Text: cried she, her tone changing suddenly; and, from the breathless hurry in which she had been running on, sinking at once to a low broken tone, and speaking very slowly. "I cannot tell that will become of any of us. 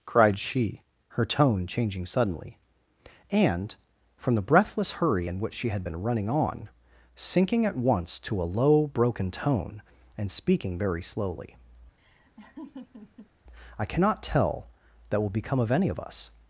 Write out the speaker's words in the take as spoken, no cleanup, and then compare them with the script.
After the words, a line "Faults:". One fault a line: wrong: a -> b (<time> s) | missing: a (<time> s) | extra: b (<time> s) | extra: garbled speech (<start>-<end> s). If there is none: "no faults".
cried she, her tone changing suddenly; and, from the breathless hurry in which she had been running on, sinking at once to a low broken tone, and speaking very slowly. "I cannot tell that will become of any of us.
Faults:
no faults